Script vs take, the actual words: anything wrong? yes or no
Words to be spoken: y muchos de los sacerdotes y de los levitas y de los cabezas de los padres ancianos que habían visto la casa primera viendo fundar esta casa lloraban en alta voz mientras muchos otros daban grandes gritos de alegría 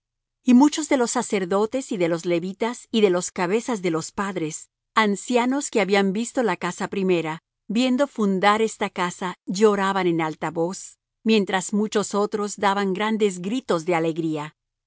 no